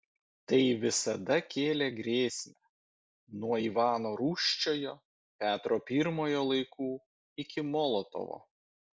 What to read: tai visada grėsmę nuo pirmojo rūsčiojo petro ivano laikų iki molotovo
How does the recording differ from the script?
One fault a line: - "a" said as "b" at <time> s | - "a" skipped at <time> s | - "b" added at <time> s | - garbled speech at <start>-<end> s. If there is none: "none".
- "kėlė" added at 1.6 s
- "pirmojo" said as "ivano" at 3.6 s
- "ivano" said as "pirmojo" at 5.9 s